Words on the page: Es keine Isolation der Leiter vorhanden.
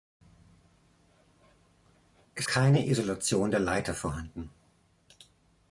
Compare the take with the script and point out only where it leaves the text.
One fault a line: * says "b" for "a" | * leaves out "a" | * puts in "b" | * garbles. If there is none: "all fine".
all fine